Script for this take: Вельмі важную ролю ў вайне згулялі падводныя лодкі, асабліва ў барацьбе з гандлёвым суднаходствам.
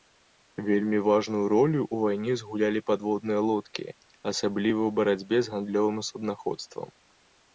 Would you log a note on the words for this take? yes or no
no